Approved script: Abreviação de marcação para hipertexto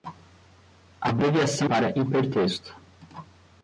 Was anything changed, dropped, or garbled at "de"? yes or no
yes